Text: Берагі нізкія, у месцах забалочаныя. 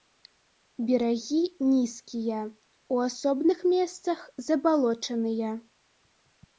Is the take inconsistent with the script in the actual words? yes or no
yes